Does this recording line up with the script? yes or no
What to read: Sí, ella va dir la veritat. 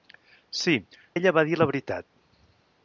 yes